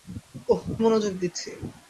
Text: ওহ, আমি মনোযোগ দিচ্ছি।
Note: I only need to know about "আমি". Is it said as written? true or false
false